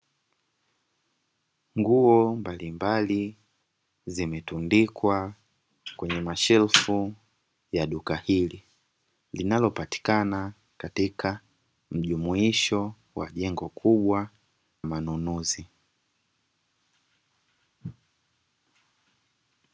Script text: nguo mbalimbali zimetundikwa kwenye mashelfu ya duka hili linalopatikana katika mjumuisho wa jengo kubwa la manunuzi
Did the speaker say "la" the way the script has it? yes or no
no